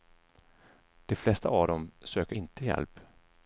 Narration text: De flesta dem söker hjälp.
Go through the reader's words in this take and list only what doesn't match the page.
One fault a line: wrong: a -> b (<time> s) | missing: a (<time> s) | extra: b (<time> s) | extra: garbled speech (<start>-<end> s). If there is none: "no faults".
extra: av (1.5 s)
extra: inte (2.3 s)